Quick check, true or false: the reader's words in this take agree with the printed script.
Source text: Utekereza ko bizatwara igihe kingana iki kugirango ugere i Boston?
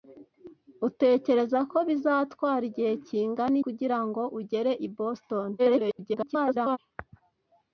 false